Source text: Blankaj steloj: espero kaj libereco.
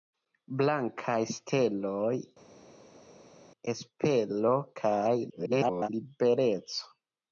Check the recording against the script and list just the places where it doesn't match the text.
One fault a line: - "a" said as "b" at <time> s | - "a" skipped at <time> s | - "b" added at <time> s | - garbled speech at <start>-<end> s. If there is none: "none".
- garbled speech at 5.3-5.9 s